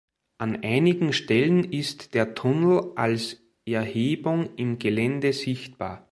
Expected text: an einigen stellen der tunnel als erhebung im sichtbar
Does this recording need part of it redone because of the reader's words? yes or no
yes